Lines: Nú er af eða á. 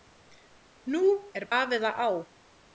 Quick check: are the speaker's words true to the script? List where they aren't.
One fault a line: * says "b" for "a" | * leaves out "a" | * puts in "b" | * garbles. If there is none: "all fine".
all fine